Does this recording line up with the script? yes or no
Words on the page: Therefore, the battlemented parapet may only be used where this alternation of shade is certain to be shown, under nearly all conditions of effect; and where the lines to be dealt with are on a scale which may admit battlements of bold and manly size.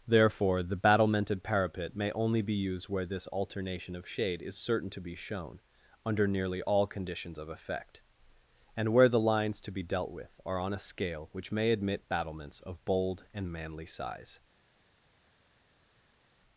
yes